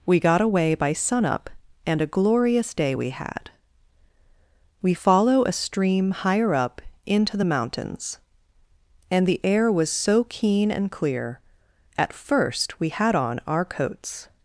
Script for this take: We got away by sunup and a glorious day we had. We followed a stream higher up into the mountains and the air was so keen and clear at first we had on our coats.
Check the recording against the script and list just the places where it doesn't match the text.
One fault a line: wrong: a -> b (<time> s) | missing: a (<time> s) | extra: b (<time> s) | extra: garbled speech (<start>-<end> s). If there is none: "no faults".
wrong: followed -> follow (4.9 s)